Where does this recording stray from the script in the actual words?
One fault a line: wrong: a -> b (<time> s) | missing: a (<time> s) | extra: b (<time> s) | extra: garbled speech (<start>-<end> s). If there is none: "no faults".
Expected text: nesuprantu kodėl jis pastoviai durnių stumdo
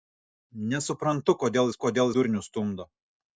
wrong: pastoviai -> kodėl (1.9 s)